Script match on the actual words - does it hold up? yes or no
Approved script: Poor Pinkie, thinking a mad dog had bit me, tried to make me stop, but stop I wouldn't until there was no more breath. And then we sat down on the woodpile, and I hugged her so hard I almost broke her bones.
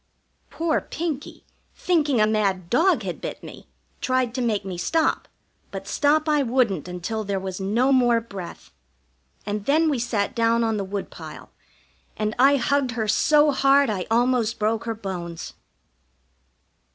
yes